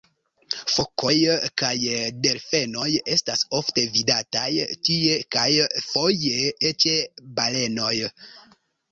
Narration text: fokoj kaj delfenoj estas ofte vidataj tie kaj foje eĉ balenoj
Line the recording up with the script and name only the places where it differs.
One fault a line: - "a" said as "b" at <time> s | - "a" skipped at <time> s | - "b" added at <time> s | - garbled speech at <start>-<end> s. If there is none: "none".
none